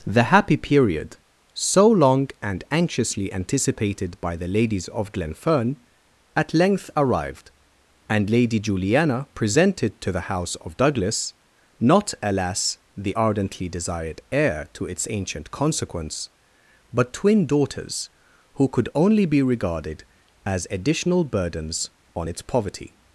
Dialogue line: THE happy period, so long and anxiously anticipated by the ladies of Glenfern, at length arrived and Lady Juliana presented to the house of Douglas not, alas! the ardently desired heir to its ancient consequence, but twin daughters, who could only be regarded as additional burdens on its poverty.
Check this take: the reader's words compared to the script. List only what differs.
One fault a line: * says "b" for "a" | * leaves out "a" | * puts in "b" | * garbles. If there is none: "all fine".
all fine